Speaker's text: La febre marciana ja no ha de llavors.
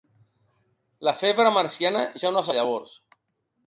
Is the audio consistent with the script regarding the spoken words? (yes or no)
yes